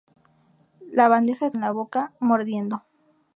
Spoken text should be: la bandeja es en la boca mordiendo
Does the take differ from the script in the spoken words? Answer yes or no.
no